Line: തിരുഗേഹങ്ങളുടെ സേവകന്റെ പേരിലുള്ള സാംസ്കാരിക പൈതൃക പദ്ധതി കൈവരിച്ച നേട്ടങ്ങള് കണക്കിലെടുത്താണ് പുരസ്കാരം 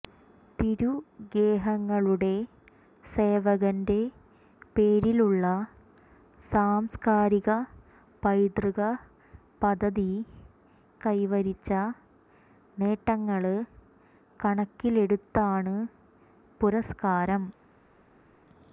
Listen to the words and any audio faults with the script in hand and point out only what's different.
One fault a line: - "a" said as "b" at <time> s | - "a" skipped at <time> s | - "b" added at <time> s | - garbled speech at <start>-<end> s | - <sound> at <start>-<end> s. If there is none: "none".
none